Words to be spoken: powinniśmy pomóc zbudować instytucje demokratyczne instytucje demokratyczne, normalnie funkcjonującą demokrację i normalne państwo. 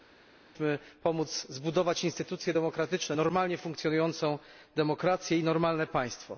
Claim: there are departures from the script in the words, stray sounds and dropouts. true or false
true